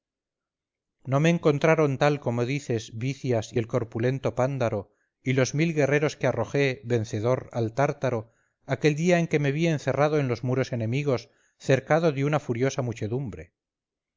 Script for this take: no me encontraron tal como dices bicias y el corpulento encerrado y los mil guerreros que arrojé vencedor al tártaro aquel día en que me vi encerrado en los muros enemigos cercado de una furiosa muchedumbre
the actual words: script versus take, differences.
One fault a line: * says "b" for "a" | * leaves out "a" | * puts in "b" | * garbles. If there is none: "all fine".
* says "pándaro" for "encerrado"